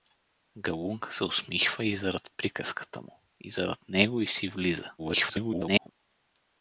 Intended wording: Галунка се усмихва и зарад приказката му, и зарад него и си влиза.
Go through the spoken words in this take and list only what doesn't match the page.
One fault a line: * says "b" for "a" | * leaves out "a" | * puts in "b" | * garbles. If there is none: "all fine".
* garbles